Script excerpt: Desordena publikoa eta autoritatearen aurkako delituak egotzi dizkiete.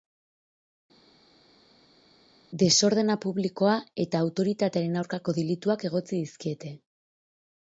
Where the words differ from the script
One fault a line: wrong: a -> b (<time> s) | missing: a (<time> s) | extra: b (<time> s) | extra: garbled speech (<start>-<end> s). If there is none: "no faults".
no faults